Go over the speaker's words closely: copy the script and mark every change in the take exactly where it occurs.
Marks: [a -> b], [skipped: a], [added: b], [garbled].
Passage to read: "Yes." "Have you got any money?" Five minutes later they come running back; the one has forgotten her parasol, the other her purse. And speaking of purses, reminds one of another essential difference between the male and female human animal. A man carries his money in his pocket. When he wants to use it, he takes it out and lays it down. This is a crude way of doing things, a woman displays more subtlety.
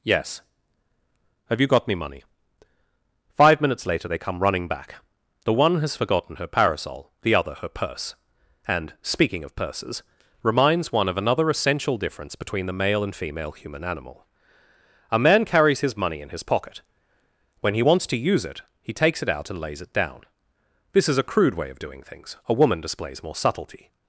"Yes." "Have you got [any -> me] money?" Five minutes later they come running back; the one has forgotten her parasol, the other her purse. And speaking of purses, reminds one of another essential difference between the male and female human animal. A man carries his money in his pocket. When he wants to use it, he takes it out and lays it down. This is a crude way of doing things, a woman displays more subtlety.